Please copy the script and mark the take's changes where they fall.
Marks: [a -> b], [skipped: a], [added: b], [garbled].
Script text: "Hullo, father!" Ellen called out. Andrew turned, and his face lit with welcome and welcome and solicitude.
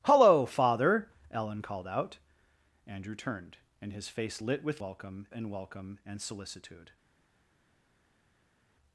"Hullo, father!" Ellen called out. Andrew turned, and his face lit with welcome and welcome and solicitude.